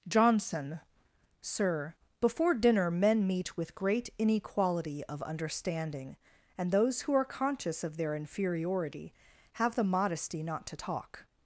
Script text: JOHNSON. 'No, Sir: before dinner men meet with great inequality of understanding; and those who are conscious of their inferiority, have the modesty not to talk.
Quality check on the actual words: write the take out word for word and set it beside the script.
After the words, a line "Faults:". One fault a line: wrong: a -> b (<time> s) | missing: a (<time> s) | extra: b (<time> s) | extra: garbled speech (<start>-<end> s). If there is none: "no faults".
JOHNSON. Sir: before dinner men meet with great inequality of understanding; and those who are conscious of their inferiority, have the modesty not to talk.
Faults:
missing: No (0.8 s)